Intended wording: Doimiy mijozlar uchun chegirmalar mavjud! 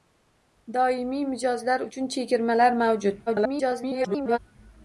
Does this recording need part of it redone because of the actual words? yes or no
yes